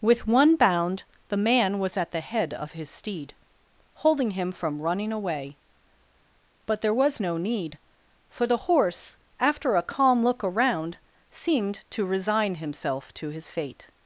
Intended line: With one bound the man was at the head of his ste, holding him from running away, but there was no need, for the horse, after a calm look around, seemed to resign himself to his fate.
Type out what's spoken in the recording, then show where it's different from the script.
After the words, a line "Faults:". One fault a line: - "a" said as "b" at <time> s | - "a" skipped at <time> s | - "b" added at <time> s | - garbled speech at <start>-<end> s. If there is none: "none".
With one bound the man was at the head of his steed, holding him from running away, but there was no need, for the horse, after a calm look around, seemed to resign himself to his fate.
Faults:
- "ste" said as "steed" at 2.9 s